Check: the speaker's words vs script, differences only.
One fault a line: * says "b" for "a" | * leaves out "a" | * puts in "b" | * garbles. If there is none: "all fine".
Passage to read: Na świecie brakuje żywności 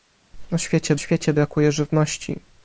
* puts in "świecie"